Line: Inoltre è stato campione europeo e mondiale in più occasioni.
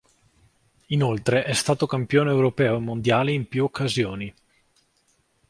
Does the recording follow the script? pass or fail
pass